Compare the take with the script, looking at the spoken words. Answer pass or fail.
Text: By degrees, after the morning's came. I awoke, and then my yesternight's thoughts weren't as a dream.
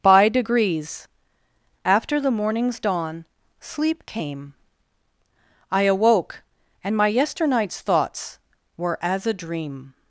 fail